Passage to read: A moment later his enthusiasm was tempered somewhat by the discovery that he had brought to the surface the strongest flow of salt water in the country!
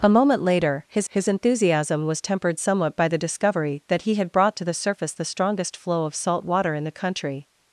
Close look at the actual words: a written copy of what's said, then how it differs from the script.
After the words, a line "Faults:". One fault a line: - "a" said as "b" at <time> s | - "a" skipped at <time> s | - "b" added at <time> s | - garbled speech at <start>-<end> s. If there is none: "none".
A moment later his his enthusiasm was tempered somewhat by the discovery that he had brought to the surface the strongest flow of salt water in the country!
Faults:
- "his" added at 1.1 s